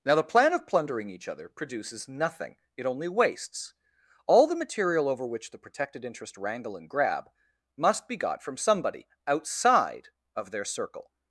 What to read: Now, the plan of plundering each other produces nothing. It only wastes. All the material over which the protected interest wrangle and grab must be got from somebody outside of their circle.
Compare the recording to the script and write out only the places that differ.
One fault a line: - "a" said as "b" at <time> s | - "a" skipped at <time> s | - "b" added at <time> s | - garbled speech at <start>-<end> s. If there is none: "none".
none